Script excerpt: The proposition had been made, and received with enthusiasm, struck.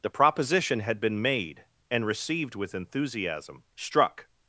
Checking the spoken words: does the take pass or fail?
pass